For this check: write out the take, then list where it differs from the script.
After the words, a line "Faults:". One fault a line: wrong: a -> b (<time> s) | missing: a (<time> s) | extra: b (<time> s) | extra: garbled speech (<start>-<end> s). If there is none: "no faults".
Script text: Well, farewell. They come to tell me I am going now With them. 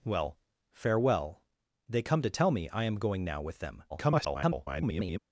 Well, farewell. They come to tell me I am going now With them. [garbled]
Faults:
extra: garbled speech (3.9-5.2 s)